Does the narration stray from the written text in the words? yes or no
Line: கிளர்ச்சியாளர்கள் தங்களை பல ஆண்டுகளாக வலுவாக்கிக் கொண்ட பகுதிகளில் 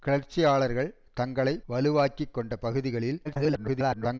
yes